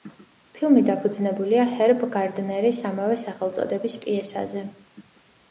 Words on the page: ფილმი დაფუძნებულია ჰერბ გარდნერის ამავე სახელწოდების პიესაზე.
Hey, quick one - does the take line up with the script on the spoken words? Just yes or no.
yes